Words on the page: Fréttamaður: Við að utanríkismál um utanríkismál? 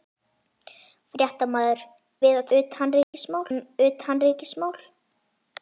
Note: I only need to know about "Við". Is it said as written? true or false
true